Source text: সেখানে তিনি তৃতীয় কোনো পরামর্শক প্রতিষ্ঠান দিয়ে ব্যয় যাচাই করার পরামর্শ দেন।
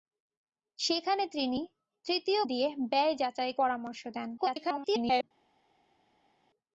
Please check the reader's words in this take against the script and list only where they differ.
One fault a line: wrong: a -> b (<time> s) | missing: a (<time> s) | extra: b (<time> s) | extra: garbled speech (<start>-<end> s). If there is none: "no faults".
missing: কোনো পরামর্শক প্রতিষ্ঠান (2.4 s)
missing: করার (3.5 s)
extra: garbled speech (4.4-5.2 s)